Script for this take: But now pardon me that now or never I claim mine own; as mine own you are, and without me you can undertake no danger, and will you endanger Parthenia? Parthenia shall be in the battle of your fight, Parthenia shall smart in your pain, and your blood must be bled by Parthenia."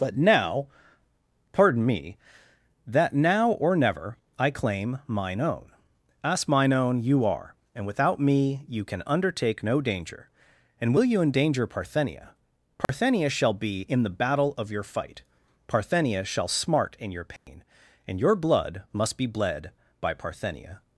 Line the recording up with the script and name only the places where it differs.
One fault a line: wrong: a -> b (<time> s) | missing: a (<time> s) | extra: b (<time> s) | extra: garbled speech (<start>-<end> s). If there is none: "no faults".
no faults